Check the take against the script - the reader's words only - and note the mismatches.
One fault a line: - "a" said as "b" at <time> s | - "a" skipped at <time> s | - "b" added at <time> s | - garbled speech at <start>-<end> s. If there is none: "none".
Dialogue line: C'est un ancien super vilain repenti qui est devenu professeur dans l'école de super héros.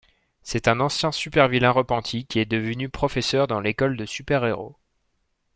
none